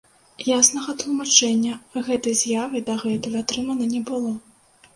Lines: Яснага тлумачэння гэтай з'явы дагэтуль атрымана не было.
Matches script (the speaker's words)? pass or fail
pass